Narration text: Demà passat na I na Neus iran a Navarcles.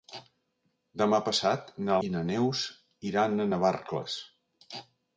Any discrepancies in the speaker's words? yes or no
no